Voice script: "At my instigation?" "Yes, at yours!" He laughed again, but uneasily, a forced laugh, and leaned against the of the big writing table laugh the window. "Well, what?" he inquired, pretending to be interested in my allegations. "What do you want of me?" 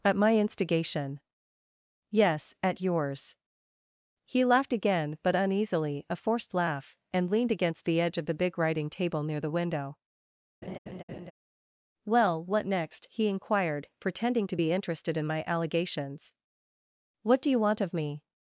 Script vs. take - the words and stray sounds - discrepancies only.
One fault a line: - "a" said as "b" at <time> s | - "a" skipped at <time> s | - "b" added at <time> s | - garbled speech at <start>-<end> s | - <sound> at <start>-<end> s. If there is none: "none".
- "edge" added at 8.0 s
- "laugh" said as "near" at 9.2 s
- laugh at 10.6-11.3 s
- "next" added at 12.7 s